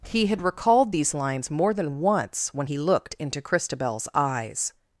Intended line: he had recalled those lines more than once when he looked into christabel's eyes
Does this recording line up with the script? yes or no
no